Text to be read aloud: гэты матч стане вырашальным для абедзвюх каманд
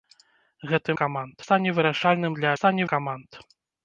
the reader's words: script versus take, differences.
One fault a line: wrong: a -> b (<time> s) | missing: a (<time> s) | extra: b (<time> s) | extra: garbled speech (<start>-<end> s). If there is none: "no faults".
wrong: матч -> каманд (1.0 s)
wrong: абедзвюх -> стане (2.6 s)